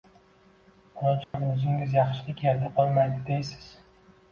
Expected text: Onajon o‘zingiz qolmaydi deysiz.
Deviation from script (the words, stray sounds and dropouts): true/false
true